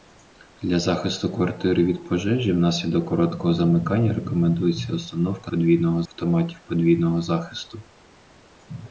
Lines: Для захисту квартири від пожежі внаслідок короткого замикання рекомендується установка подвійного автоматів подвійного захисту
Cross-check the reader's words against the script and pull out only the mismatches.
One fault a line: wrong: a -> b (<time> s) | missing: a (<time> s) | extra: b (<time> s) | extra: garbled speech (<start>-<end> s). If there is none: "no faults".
no faults